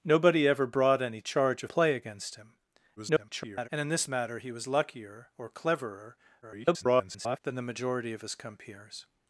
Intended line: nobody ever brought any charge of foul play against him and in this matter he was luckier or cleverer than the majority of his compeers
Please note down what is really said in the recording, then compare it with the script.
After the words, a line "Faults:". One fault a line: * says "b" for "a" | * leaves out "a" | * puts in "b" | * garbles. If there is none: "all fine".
nobody ever brought any charge of play against him [garbled] and in this matter he was luckier or cleverer [garbled] than the majority of his compeers
Faults:
* leaves out "foul"
* garbles
* garbles